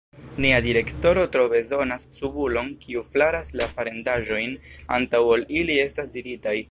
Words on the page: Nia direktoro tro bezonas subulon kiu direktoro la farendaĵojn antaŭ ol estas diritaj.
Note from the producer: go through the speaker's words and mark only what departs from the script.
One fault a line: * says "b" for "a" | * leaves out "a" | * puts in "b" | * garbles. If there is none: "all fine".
* says "flaras" for "direktoro"
* puts in "ili"